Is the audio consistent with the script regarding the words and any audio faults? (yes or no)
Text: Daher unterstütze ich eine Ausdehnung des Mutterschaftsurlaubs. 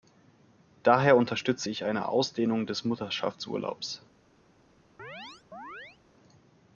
no